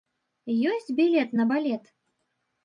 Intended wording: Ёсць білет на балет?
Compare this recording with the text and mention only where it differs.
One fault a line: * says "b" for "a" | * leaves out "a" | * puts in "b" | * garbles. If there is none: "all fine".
all fine